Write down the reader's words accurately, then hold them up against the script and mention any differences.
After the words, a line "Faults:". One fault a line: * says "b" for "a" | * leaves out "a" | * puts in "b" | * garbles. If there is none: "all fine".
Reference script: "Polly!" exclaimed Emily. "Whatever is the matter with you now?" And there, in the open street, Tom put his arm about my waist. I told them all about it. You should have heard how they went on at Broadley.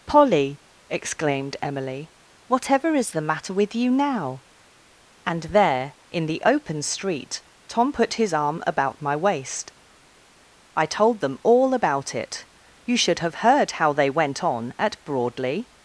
"Polly!" exclaimed Emily. "Whatever is the matter with you now?" And there, in the open street, Tom put his arm about my waist. I told them all about it. You should have heard how they went on at Broadley.
Faults:
all fine